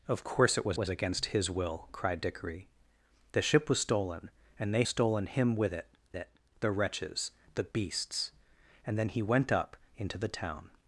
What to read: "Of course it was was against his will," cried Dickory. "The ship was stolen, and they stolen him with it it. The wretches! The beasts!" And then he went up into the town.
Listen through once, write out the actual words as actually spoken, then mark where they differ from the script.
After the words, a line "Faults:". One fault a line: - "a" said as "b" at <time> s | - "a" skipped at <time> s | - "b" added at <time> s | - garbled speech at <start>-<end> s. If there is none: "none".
"Of course it was was against his will," cried Dickory. "The ship was stolen, and they stolen him with it it. The wretches! The beasts!" And then he went up into the town.
Faults:
none